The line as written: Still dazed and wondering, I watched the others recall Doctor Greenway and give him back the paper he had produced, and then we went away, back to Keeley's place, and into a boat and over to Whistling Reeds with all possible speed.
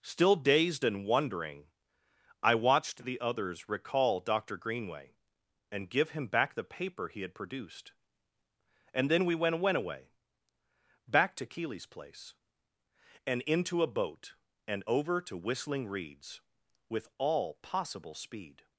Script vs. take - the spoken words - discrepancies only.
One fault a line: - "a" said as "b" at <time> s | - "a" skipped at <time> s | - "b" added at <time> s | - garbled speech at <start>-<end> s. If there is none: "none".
- "went" added at 9.6 s